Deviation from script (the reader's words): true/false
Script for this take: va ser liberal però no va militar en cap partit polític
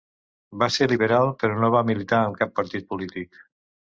false